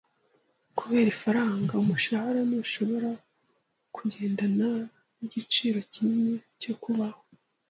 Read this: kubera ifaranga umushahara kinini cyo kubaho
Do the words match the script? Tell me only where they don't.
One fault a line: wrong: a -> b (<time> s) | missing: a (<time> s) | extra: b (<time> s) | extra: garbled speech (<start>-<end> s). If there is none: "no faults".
extra: ntushobora kugendana nigiciro (2.5 s)